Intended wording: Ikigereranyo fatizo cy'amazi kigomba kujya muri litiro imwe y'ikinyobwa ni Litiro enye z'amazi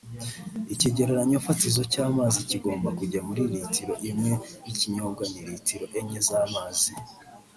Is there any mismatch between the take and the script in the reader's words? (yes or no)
no